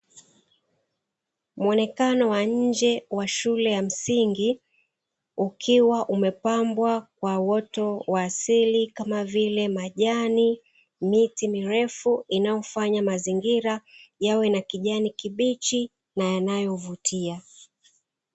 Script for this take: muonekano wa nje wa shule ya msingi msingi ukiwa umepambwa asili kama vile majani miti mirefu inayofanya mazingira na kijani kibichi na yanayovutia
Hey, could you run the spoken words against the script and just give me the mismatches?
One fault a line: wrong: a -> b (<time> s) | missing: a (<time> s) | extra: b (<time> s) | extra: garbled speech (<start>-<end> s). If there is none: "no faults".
missing: msingi (4.6 s)
extra: kwa uoto wa (7.2 s)
extra: yawe (14.2 s)